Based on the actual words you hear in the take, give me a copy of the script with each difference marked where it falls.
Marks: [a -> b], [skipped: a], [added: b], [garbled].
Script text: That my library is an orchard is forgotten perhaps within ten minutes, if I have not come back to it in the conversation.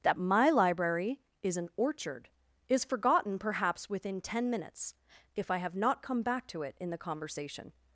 That my library is an orchard is forgotten perhaps within ten minutes, if I have not come back to it in the conversation.